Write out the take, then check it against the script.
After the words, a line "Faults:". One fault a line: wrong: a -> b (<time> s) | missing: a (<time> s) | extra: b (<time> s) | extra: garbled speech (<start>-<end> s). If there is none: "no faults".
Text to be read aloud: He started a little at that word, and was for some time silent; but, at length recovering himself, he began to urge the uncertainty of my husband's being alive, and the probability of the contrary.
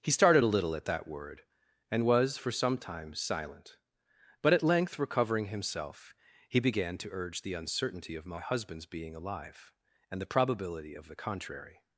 He started a little at that word, and was for some time silent; but, at length recovering himself, he began to urge the uncertainty of my husband's being alive, and the probability of the contrary.
Faults:
no faults